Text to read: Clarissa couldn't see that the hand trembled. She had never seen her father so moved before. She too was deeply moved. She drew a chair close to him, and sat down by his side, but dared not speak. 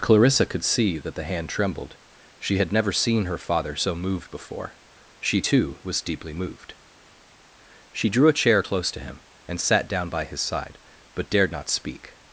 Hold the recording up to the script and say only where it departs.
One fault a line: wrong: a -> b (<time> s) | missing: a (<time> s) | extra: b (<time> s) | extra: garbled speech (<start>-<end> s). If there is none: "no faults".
wrong: couldn't -> could (0.5 s)